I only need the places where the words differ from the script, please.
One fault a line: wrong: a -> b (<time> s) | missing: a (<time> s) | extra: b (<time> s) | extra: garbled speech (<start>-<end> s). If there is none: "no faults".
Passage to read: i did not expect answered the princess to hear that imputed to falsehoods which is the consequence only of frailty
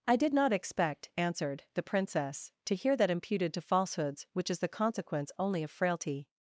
no faults